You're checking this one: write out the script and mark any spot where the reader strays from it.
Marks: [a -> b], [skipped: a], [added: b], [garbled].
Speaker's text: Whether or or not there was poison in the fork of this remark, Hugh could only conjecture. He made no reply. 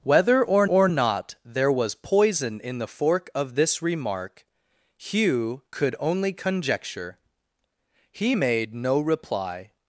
Whether or or not there was poison in the fork of this remark, Hugh could only conjecture. He made no reply.